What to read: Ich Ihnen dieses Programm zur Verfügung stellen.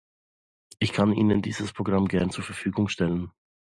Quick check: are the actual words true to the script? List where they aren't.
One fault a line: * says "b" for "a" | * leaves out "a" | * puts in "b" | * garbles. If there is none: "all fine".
* puts in "kann"
* puts in "gern"